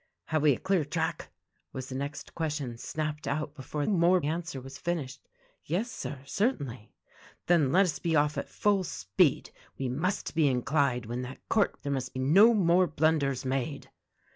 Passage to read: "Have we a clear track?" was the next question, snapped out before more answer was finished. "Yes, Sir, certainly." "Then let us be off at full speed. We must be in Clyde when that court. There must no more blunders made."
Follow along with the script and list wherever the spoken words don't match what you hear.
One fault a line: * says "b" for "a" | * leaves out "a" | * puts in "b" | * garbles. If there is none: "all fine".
all fine